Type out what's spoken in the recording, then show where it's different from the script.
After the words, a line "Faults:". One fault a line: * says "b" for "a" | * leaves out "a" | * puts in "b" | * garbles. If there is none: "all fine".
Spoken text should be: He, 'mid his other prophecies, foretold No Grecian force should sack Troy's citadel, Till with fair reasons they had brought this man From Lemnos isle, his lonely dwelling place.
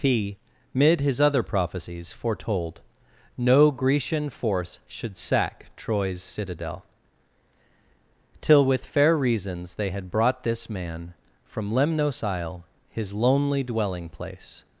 He, 'mid his other prophecies, foretold No Grecian force should sack Troy's citadel, Till with fair reasons they had brought this man From Lemnos isle, his lonely dwelling place.
Faults:
all fine